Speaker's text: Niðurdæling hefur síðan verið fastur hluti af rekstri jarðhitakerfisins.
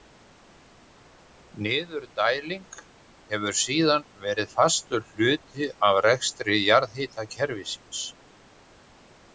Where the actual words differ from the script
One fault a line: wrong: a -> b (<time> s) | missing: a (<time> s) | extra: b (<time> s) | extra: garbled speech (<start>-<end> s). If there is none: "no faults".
no faults